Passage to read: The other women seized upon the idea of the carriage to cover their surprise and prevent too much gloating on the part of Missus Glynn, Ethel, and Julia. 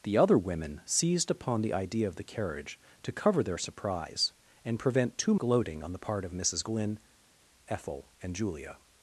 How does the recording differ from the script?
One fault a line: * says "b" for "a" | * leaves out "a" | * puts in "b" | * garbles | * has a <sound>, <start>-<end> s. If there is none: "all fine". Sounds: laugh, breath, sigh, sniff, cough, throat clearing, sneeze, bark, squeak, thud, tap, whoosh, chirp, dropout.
* leaves out "much"